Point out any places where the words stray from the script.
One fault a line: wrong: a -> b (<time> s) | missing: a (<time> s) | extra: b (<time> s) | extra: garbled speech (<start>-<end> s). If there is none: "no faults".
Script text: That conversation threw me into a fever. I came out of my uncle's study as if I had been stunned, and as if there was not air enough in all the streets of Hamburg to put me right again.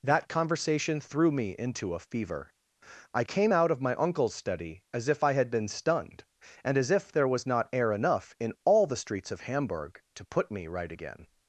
no faults